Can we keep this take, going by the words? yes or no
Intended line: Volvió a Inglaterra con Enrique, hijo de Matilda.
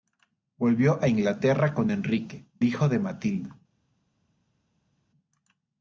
yes